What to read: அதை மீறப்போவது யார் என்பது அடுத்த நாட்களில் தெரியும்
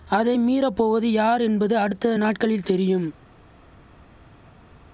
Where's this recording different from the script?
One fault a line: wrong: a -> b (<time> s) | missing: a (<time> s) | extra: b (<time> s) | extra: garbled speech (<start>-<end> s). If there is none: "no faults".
no faults